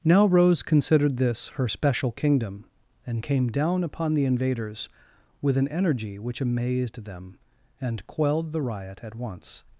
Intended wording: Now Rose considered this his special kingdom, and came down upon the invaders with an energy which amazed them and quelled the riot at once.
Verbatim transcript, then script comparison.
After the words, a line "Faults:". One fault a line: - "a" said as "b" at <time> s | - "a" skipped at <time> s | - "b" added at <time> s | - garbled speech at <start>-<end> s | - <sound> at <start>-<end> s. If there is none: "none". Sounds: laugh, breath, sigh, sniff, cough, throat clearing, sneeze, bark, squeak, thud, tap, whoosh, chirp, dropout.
Now Rose considered this her special kingdom, and came down upon the invaders with an energy which amazed them and quelled the riot at once.
Faults:
- "his" said as "her" at 1.5 s